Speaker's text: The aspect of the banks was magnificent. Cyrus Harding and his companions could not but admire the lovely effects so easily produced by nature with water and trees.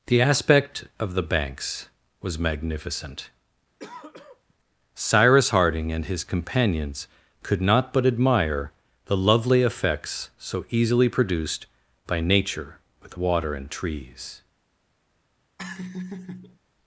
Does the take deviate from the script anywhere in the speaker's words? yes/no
no